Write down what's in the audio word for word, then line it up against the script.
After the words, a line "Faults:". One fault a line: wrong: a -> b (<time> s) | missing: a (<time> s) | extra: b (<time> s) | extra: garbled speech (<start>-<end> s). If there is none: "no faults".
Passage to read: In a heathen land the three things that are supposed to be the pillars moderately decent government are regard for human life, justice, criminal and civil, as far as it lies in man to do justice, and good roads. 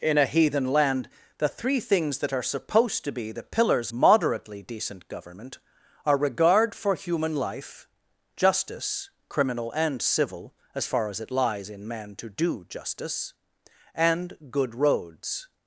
In a heathen land the three things that are supposed to be the pillars moderately decent government are regard for human life, justice, criminal and civil, as far as it lies in man to do justice, and good roads.
Faults:
no faults